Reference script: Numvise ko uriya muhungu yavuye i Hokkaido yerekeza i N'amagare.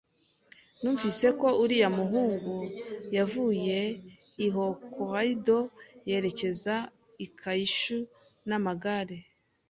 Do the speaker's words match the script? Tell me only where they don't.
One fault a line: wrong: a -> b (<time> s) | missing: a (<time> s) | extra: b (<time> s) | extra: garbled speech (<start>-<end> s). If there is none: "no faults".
extra: Kyushu (7.4 s)